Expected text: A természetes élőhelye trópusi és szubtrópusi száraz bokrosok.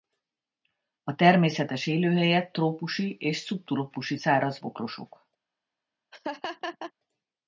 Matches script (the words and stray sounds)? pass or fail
fail